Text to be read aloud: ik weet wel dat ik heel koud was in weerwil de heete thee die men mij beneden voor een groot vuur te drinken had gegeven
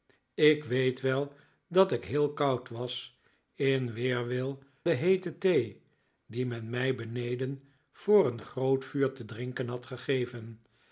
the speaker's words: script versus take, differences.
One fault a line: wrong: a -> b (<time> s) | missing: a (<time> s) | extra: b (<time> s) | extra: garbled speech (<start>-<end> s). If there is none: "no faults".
no faults